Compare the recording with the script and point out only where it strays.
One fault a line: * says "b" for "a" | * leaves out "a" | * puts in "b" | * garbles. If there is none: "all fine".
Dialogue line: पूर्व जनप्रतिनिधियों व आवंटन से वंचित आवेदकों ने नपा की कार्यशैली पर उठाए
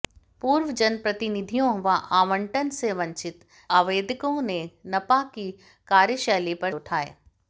all fine